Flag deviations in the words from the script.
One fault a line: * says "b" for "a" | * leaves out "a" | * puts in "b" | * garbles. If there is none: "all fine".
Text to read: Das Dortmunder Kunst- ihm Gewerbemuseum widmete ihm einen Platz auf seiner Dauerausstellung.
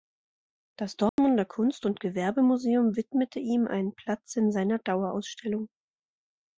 * says "und" for "ihm"
* says "in" for "auf"